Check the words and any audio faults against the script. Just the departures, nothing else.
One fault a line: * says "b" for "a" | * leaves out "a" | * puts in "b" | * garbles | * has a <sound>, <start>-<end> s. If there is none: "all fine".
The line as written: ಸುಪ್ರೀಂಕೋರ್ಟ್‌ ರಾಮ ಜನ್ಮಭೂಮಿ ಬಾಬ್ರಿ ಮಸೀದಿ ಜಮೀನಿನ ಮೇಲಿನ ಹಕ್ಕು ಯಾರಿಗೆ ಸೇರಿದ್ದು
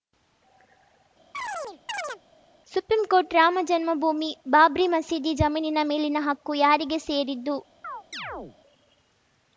* has a chirp, 1.3-2.2 s
* has a chirp, 7.8-8.6 s